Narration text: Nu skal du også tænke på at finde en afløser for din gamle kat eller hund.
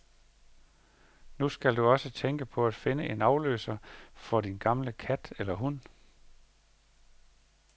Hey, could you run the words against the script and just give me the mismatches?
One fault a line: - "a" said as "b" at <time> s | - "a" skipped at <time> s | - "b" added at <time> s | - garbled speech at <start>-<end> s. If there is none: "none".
none